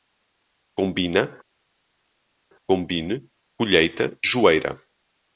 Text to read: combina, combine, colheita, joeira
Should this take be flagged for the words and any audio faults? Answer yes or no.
no